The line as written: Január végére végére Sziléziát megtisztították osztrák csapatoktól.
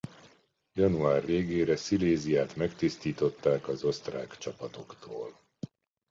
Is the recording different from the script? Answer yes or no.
yes